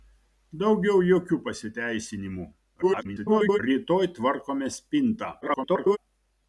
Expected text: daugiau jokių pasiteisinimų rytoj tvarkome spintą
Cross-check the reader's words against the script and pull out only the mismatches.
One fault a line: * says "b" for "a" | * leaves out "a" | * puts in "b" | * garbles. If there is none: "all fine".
* garbles
* garbles